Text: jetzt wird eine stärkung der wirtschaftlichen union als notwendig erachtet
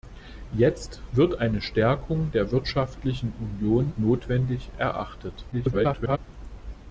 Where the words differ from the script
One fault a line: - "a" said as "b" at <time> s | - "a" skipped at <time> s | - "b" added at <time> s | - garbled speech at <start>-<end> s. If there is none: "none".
- "als" skipped at 3.9 s
- garbled speech at 5.5-6.2 s